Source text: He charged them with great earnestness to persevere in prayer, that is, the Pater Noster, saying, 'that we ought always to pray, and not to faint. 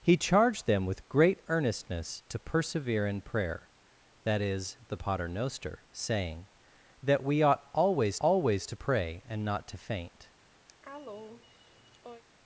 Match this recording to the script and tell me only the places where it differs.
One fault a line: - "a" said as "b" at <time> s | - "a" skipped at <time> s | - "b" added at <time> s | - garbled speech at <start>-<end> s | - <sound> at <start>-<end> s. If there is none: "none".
- "always" added at 8.2 s
- cough at 10.7-12.2 s